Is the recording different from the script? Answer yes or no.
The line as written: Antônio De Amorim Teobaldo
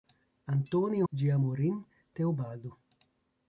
no